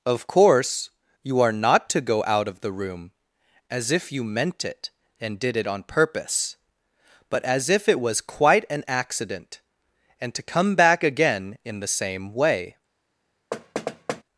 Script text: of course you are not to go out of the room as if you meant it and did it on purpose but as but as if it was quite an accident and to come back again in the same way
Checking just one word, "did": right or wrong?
right